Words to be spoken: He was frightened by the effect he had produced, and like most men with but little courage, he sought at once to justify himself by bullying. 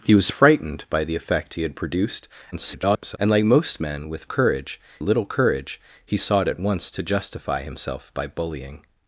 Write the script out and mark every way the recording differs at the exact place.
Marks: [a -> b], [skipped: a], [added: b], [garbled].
He was frightened by the effect he had produced, [garbled] and like most men with [but -> courage] little courage, he sought at once to justify himself by bullying.